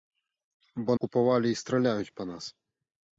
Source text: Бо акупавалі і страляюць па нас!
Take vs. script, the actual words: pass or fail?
pass